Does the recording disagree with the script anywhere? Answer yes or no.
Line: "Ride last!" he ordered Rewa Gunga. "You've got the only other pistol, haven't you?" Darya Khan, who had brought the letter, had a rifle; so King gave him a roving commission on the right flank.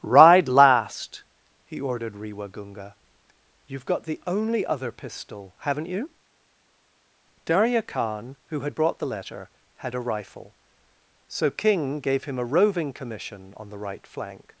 no